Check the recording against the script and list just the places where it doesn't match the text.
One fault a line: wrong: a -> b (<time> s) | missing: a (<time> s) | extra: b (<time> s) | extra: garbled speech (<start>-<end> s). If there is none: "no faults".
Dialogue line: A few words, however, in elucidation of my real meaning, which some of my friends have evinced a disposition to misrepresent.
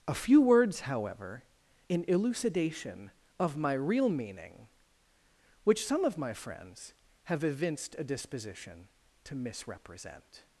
no faults